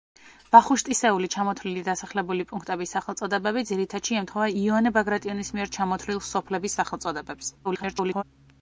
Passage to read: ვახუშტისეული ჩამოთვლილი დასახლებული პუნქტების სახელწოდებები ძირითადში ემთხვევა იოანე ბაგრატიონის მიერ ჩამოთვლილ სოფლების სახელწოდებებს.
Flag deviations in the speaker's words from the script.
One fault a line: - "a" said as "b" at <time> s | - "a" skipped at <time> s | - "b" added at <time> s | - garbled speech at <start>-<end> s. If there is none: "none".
- garbled speech at 7.6-8.2 s